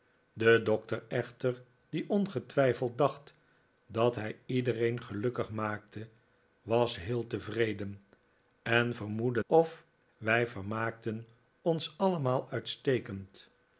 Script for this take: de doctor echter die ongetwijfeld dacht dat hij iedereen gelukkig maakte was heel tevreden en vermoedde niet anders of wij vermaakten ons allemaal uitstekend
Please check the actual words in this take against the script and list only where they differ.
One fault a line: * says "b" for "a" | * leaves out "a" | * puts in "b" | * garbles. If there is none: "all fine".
* leaves out "niet anders"